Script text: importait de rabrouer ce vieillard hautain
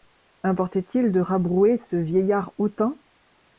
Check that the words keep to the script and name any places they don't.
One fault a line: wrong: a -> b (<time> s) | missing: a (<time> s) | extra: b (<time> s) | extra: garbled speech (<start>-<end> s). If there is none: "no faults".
extra: il (0.9 s)